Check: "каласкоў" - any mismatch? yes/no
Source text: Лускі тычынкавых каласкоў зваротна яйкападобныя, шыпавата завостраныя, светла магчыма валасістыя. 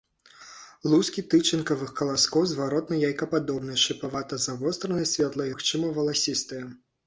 no